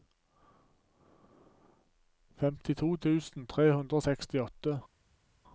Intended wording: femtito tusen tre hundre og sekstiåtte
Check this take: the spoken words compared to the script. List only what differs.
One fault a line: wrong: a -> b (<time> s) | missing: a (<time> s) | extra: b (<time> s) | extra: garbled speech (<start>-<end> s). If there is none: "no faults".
no faults